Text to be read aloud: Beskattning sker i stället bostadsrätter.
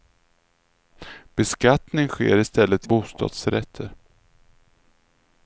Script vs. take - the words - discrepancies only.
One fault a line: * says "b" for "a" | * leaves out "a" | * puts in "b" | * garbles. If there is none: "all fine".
all fine